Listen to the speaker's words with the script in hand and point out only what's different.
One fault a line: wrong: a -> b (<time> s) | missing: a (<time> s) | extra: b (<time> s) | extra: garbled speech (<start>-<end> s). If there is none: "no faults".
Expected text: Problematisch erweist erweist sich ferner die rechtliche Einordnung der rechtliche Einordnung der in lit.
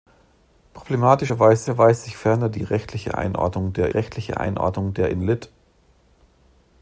no faults